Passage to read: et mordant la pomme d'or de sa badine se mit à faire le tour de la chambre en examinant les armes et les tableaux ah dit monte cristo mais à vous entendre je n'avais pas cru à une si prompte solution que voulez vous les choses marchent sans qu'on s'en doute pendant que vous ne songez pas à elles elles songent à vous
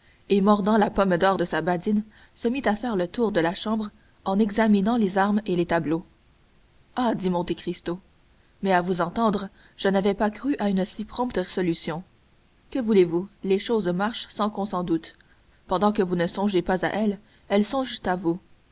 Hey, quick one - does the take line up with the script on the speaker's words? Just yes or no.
yes